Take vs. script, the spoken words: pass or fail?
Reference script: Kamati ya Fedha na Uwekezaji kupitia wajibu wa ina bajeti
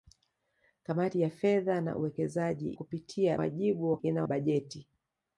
pass